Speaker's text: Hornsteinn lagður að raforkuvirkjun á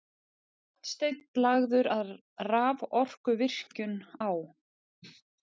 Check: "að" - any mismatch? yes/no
no